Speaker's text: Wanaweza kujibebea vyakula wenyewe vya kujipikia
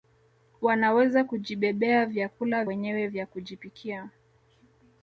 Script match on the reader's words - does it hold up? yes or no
yes